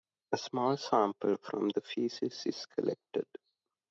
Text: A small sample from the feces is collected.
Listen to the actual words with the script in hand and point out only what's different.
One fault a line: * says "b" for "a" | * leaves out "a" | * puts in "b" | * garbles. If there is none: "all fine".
all fine